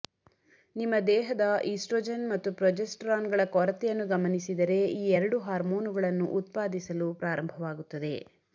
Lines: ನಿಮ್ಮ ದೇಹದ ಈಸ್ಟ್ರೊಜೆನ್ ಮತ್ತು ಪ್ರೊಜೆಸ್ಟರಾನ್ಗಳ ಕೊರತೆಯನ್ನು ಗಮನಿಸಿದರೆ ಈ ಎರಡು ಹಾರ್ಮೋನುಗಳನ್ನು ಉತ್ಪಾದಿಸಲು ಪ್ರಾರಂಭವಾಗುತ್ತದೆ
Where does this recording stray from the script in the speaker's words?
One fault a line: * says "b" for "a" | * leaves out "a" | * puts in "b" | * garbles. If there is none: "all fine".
all fine